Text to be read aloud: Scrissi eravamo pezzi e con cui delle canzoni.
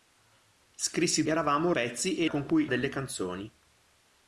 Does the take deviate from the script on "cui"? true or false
false